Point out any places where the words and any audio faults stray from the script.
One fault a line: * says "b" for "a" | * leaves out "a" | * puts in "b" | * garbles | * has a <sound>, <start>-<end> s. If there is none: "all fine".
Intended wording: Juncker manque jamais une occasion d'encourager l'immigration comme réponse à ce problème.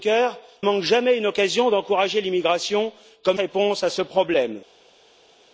all fine